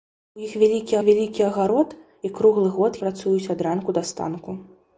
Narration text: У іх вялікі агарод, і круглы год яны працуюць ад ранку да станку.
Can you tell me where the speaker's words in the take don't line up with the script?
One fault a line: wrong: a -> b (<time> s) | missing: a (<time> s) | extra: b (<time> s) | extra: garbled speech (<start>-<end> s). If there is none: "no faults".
extra: вялікі (1.1 s)
missing: яны (3.0 s)